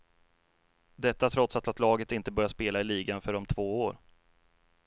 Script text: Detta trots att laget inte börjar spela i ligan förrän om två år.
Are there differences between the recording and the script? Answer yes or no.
yes